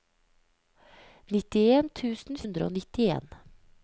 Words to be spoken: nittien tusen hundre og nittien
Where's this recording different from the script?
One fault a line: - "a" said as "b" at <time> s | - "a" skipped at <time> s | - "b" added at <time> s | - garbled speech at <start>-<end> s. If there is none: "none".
none